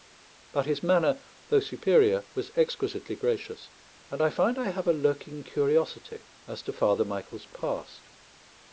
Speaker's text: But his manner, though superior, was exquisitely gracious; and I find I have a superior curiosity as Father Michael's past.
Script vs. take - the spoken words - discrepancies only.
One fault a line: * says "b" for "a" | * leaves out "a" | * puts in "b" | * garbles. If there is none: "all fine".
* says "lurking" for "superior"
* puts in "to"